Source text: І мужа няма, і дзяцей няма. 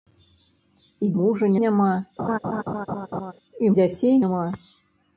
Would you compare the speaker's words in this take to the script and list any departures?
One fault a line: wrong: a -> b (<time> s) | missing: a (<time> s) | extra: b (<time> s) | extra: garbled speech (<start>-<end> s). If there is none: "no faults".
no faults